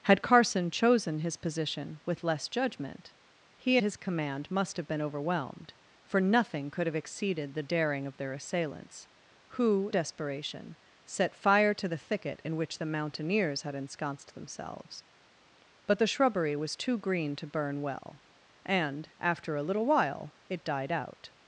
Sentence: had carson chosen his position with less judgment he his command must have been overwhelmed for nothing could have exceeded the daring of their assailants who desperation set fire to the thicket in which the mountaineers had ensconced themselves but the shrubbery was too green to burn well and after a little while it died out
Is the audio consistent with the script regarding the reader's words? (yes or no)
yes